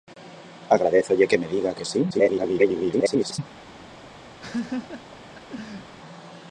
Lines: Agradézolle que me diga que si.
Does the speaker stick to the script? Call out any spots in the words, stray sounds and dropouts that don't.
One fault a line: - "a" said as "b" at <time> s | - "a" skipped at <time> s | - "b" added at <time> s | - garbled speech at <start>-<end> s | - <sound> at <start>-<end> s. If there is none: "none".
- garbled speech at 2.1-3.4 s
- laugh at 4.4-5.9 s